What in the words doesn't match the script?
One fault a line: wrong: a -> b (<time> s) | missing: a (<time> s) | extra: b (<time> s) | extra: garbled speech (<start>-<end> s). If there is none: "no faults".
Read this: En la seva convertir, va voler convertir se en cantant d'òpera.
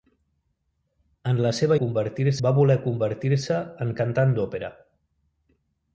no faults